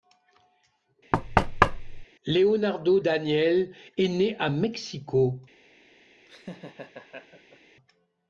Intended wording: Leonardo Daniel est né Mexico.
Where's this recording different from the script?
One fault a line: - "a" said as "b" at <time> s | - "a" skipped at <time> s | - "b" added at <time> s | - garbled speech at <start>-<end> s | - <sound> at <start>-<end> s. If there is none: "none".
- thud at 1.1-2.0 s
- "à" added at 4.4 s
- laugh at 6.3-7.6 s